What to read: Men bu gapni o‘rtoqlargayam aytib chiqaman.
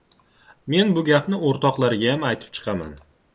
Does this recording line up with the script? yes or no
yes